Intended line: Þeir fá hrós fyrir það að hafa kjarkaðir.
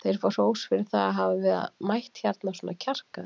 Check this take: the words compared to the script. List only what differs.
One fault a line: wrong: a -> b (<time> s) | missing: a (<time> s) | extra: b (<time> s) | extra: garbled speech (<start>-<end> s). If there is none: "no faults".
extra: mætt hérna svona (1.9 s)